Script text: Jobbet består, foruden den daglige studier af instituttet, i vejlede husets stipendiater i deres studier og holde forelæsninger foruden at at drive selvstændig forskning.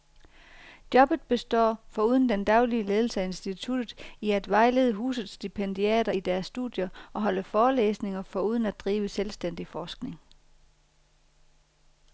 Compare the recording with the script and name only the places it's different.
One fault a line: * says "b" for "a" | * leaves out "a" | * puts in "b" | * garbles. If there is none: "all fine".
* says "ledelse" for "studier"
* puts in "at"
* leaves out "at"